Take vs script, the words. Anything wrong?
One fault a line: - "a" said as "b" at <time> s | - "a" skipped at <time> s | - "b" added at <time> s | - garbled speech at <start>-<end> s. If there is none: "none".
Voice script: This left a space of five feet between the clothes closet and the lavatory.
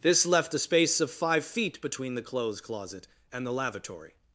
none